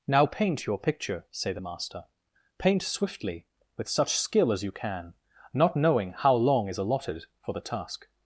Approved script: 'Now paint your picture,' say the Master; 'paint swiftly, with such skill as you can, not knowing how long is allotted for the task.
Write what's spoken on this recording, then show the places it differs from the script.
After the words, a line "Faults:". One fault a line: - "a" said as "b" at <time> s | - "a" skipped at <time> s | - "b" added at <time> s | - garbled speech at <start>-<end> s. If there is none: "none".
'Now paint your picture,' say the Master; 'paint swiftly, with such skill as you can, not knowing how long is allotted for the task.
Faults:
none